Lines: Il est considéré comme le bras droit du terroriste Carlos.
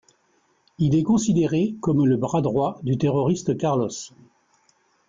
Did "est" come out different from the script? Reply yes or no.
no